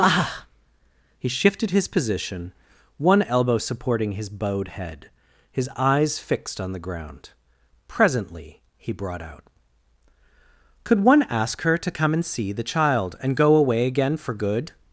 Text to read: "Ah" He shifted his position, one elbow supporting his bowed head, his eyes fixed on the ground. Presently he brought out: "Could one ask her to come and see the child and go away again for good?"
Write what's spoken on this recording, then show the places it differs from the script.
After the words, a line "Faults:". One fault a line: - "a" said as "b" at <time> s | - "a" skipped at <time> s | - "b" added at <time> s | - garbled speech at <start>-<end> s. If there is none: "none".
"Ah" He shifted his position, one elbow supporting his bowed head, his eyes fixed on the ground. Presently he brought out: "Could one ask her to come and see the child and go away again for good?"
Faults:
none